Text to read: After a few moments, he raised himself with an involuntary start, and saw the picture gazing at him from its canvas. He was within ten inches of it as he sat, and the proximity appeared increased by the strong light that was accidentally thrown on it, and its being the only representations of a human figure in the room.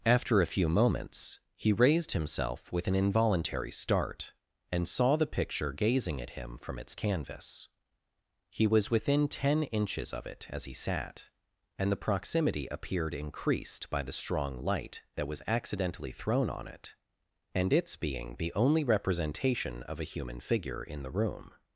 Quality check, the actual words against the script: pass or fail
fail